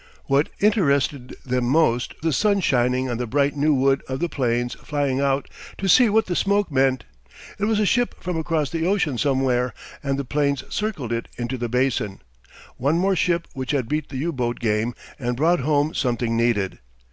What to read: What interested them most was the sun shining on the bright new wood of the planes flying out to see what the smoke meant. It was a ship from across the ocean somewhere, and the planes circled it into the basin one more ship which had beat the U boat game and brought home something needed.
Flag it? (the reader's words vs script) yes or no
yes